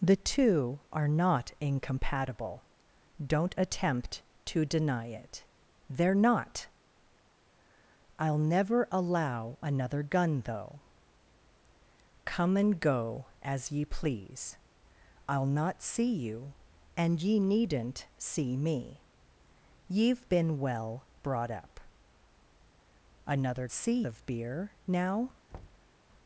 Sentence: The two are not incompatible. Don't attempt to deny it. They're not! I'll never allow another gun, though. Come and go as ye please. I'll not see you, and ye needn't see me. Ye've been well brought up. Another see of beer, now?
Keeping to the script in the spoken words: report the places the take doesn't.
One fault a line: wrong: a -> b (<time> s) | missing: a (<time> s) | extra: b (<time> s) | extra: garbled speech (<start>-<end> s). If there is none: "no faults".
no faults